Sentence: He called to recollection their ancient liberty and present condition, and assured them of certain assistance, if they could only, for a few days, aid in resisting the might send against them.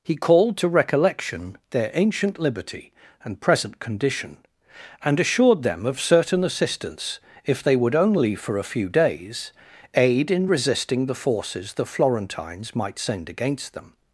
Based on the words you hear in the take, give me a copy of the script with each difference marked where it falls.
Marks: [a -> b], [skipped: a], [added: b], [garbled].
He called to recollection their ancient liberty and present condition, and assured them of certain assistance, if they [could -> would] only, for a few days, aid in resisting the [added: forces the Florentines] might send against them.